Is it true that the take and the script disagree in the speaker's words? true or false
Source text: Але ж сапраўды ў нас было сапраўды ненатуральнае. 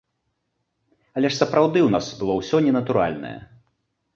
true